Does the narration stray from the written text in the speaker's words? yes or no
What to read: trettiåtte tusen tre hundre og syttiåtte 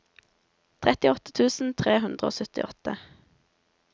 no